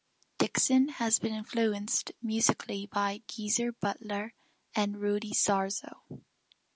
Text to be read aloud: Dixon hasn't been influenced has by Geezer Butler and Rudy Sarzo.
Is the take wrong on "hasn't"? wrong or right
wrong